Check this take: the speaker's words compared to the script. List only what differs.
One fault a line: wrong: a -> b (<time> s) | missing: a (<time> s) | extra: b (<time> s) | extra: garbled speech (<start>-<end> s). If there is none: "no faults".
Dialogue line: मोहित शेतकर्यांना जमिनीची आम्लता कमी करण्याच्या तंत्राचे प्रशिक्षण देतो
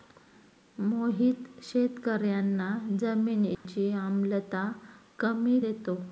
missing: करण्याच्या तंत्राचे प्रशिक्षण (5.6 s)